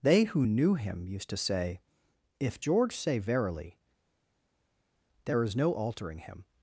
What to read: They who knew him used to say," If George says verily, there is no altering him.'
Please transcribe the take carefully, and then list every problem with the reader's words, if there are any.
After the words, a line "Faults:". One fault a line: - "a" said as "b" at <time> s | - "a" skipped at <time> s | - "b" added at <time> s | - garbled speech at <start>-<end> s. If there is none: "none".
They who knew him used to say," If George say verily, there is no altering him.'
Faults:
- "says" said as "say" at 2.9 s